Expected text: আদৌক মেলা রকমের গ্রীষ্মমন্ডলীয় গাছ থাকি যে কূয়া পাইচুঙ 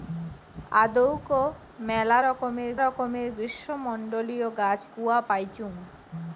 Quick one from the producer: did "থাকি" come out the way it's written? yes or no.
no